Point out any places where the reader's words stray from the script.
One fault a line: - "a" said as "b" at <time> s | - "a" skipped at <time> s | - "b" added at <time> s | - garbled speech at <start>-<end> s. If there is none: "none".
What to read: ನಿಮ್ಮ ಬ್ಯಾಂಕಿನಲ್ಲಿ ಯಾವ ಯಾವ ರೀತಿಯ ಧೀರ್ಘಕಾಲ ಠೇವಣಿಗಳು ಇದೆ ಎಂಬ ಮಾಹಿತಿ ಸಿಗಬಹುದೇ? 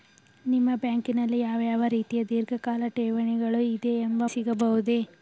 - "ಮಾಹಿತಿ" skipped at 4.2 s